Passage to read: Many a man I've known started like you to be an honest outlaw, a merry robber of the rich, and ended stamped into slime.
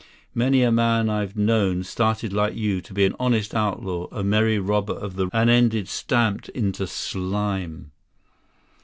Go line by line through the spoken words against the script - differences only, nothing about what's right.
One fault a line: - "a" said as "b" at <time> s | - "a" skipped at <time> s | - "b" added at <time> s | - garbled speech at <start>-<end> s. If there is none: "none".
- "rich" skipped at 5.3 s